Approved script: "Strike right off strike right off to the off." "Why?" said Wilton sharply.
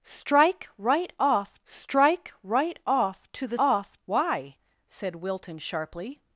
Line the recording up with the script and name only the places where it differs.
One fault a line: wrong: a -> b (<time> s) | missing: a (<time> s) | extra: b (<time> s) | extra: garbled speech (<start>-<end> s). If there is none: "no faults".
no faults